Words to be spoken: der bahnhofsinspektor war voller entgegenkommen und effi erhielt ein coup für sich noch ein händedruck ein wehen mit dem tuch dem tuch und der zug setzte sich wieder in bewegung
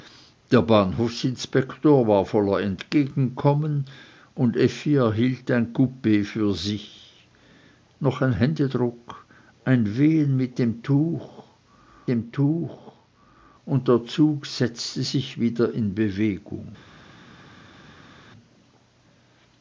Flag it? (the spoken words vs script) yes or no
no